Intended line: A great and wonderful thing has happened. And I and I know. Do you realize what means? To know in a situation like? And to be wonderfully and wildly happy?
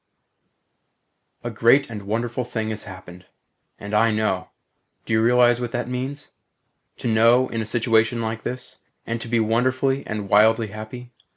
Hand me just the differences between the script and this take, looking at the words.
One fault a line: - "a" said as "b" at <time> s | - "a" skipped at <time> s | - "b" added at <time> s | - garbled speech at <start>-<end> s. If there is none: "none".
- "and I" skipped at 4.1 s
- "that" added at 5.7 s
- "this" added at 8.4 s